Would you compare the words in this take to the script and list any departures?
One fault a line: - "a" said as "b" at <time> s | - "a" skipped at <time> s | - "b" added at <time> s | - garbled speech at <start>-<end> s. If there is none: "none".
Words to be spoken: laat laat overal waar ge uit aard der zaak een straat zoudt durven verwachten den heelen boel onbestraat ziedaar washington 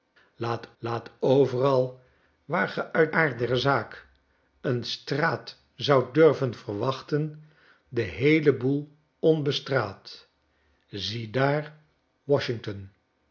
none